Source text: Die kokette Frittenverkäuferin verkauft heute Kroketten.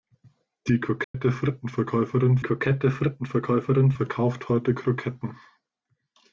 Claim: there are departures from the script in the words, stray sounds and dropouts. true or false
true